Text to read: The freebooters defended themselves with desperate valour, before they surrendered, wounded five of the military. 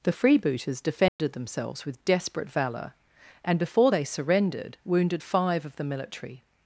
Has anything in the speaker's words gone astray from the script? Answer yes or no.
yes